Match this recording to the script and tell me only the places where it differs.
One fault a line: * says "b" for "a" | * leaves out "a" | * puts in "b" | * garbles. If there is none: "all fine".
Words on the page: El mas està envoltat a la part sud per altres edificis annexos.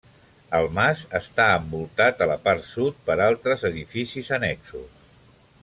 all fine